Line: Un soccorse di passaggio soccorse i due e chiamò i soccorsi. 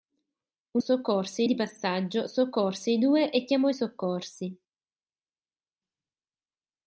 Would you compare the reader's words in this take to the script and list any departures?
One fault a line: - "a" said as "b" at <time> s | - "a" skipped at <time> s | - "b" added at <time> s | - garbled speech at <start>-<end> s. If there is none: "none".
none